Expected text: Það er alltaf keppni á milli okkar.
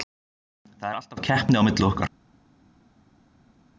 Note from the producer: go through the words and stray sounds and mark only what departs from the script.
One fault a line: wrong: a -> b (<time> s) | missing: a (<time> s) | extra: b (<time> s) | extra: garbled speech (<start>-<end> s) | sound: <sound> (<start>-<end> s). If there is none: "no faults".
no faults